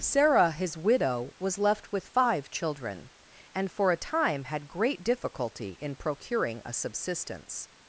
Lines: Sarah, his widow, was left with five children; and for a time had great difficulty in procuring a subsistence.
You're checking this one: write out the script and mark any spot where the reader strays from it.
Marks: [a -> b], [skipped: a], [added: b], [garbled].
Sarah, his widow, was left with five children; and for a time had great difficulty in procuring a subsistence.